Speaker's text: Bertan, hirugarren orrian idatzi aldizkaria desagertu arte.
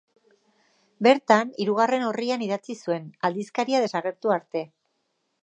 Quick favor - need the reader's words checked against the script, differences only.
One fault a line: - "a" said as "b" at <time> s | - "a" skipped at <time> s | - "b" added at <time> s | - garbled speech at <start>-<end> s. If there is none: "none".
- "zuen" added at 2.9 s